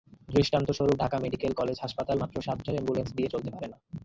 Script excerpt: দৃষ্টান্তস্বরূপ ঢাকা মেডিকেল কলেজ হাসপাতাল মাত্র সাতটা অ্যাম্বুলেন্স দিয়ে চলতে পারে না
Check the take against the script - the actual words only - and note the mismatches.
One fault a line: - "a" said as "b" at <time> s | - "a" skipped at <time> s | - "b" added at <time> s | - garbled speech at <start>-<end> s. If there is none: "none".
none